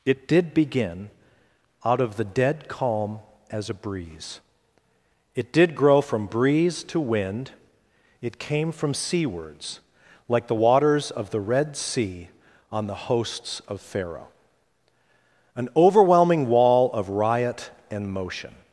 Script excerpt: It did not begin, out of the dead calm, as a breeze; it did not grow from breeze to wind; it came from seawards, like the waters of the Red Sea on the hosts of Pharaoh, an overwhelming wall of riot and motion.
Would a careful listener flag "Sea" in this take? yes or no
no